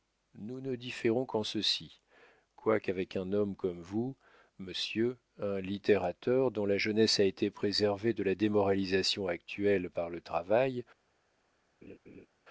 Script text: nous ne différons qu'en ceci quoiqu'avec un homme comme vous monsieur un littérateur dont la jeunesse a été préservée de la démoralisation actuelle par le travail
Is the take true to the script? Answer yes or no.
yes